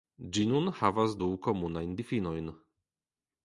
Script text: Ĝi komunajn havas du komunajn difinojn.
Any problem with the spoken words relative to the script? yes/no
yes